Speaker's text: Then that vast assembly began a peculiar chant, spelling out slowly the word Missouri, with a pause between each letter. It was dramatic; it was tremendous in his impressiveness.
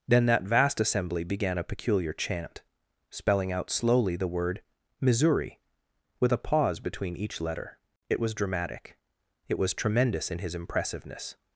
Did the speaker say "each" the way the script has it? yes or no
yes